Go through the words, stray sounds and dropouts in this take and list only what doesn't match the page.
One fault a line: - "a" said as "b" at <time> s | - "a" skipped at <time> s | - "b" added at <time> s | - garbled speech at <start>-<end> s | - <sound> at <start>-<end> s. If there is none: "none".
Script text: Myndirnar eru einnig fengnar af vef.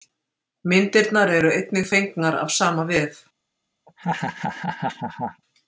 - "sama" added at 2.6 s
- laugh at 3.9-5.4 s